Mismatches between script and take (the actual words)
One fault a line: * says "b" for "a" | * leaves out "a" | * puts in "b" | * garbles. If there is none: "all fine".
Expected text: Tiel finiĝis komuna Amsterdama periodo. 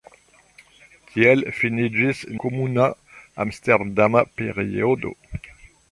all fine